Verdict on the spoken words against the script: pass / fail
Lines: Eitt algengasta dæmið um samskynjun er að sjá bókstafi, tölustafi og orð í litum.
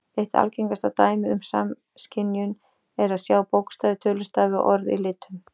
pass